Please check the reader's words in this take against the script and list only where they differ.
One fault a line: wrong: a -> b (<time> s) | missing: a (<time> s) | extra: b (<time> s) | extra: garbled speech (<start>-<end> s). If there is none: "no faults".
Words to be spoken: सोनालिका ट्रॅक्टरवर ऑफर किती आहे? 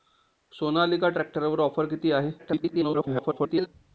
extra: garbled speech (2.4-3.7 s)